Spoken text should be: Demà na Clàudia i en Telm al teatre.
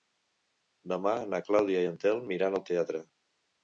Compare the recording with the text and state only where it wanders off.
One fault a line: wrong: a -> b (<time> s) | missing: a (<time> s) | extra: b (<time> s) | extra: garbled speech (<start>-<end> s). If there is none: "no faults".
extra: iran (2.4 s)